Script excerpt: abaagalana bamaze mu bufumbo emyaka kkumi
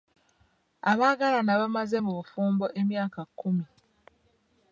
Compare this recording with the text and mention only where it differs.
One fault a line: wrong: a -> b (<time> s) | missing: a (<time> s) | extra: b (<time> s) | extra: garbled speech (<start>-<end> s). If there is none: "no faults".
no faults